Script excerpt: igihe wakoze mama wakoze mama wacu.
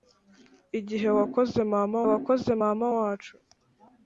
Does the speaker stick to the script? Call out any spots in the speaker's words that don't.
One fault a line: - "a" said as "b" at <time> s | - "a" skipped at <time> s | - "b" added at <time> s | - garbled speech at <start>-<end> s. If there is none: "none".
none